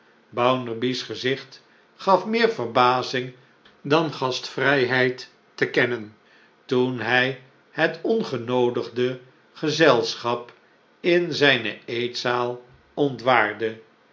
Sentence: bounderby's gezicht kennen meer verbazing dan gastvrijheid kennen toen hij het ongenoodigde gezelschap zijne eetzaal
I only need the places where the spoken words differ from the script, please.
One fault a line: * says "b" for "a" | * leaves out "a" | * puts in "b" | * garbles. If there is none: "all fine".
* says "gaf" for "kennen"
* puts in "te"
* puts in "in"